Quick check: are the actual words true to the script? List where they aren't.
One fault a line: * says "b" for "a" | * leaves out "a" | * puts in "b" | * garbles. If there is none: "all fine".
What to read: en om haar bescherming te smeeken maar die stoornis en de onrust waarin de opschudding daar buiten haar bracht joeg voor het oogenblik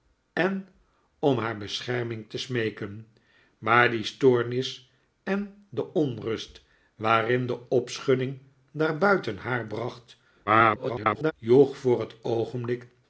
* garbles